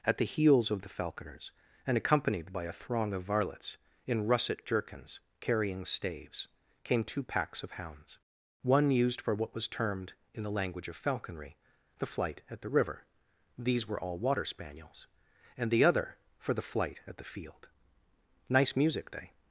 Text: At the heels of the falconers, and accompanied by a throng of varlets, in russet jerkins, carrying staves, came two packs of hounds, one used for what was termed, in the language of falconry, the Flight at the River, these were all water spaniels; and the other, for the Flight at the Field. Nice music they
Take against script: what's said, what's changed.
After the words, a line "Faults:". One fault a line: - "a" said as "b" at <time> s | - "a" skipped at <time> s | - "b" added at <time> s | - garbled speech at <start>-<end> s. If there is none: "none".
At the heels of the falconers, and accompanied by a throng of varlets, in russet jerkins, carrying staves, came two packs of hounds, one used for what was termed, in the language of falconry, the Flight at the River, these were all water spaniels; and the other, for the Flight at the Field. Nice music they
Faults:
none